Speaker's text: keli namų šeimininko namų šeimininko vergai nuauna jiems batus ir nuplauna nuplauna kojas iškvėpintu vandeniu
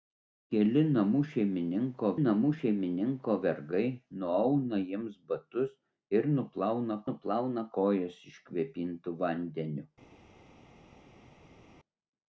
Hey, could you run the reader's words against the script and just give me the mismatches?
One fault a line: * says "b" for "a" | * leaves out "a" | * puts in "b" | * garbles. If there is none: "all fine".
all fine